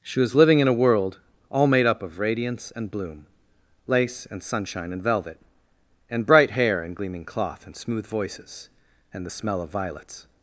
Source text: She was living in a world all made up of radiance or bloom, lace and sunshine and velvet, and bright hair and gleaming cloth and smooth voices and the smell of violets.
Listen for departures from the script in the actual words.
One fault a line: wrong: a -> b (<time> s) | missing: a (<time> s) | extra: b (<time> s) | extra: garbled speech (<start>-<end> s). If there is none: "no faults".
wrong: or -> and (2.8 s)